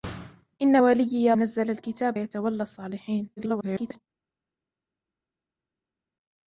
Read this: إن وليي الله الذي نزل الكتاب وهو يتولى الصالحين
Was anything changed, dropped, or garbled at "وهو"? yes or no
yes